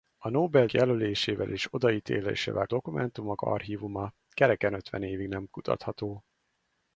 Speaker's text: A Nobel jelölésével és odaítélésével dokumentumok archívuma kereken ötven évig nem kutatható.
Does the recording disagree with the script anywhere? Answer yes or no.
no